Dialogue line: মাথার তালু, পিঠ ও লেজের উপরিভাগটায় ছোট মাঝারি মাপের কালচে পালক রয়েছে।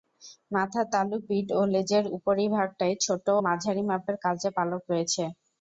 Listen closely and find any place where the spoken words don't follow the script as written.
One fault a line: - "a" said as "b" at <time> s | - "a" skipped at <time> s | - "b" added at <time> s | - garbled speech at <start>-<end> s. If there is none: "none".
none